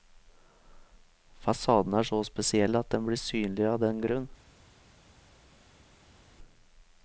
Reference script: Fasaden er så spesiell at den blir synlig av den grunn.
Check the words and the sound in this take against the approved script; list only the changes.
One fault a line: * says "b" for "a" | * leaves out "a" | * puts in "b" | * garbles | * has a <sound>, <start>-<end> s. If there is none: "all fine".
all fine